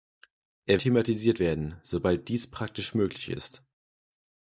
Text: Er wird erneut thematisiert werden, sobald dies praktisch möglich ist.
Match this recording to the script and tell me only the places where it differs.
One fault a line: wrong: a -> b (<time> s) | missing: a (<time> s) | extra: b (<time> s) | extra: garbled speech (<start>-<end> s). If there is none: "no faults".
missing: wird erneut (0.8 s)